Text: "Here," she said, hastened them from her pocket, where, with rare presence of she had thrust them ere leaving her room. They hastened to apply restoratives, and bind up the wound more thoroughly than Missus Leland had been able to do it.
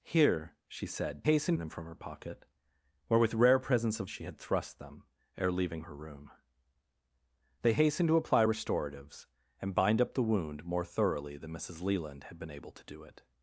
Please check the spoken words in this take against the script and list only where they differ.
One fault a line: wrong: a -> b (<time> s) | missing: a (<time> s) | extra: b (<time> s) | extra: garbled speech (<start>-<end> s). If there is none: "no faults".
no faults